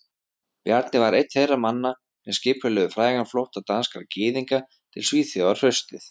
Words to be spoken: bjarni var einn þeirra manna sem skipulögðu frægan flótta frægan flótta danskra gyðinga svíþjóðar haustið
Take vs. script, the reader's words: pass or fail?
fail